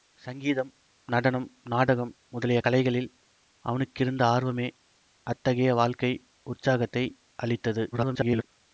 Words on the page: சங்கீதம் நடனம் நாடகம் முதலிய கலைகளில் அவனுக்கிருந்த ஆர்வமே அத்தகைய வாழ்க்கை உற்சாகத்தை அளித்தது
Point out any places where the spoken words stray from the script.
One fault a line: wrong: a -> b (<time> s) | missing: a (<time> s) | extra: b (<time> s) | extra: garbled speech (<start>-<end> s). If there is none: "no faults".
extra: garbled speech (7.9-8.4 s)